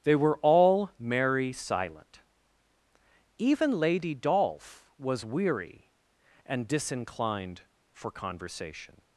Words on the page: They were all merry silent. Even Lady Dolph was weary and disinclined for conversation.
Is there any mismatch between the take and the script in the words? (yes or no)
no